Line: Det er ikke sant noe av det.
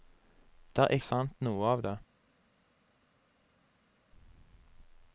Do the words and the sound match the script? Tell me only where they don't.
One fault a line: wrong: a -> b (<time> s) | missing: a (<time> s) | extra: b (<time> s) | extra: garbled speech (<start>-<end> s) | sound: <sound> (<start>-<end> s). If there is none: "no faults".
missing: ikke (0.9 s)